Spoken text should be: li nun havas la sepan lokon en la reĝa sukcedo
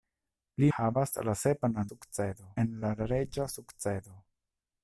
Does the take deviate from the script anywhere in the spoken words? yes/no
yes